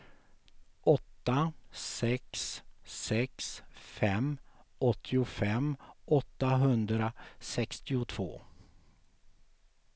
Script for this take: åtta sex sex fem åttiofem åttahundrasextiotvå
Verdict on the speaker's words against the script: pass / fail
pass